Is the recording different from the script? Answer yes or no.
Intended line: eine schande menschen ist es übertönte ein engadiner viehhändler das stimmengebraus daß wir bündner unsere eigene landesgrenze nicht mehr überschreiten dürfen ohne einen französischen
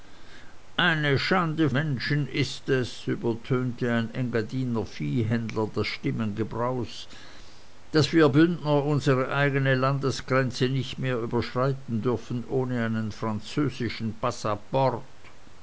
no